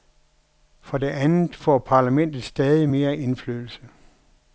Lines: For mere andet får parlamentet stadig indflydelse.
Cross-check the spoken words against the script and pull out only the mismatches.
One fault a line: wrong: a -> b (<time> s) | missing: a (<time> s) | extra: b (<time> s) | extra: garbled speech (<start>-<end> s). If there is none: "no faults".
wrong: mere -> det (1.0 s)
extra: mere (2.9 s)